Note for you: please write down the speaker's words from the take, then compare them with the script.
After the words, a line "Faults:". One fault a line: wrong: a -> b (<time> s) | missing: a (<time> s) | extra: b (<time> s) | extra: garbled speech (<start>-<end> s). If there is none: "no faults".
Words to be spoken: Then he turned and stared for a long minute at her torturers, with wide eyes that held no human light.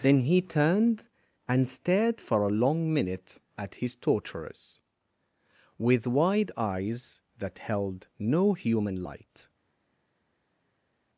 Then he turned and stared for a long minute at his torturers, with wide eyes that held no human light.
Faults:
wrong: her -> his (3.8 s)